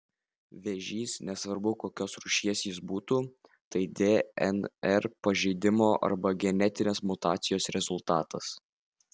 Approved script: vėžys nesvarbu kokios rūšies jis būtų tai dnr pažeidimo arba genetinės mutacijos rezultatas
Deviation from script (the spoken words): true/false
false